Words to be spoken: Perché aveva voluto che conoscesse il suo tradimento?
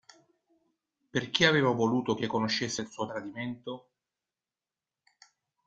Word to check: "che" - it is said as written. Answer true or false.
true